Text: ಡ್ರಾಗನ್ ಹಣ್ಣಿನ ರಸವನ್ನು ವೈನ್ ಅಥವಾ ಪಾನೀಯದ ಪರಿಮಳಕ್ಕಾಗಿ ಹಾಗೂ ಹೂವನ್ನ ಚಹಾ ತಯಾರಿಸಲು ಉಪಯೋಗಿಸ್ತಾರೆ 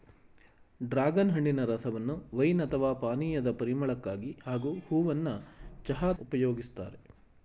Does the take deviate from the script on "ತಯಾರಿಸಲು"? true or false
true